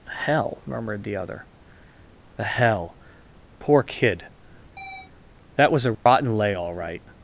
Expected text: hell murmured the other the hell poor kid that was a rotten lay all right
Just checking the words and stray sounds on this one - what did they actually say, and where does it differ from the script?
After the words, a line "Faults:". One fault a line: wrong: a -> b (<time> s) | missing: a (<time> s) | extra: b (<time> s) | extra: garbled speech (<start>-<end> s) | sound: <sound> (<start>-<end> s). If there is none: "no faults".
hell murmured the other the hell poor kid that was a rotten lay all right
Faults:
sound: chirp (4.8-5.1 s)
sound: dropout (5.9-6.1 s)